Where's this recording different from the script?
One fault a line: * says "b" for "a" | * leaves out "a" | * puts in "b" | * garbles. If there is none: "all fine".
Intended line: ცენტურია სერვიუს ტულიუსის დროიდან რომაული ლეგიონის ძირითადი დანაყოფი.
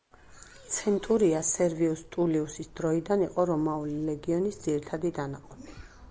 * puts in "იყო"